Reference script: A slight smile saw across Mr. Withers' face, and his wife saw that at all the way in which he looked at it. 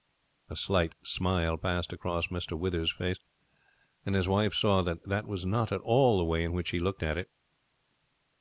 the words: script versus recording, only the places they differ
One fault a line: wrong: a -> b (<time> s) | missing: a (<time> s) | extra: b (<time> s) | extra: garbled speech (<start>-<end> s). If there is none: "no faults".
wrong: saw -> passed (1.6 s)
extra: that was not (5.1 s)